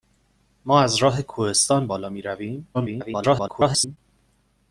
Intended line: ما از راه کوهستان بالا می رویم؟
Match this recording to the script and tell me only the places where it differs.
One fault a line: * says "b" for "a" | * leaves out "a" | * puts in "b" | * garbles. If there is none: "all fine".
* garbles